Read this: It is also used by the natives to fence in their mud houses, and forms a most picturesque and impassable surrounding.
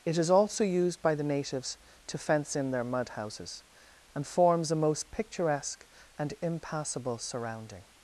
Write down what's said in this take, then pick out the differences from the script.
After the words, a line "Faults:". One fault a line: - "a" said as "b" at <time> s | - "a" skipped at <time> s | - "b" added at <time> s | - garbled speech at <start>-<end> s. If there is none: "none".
It is also used by the natives to fence in their mud houses, and forms a most picturesque and impassable surrounding.
Faults:
none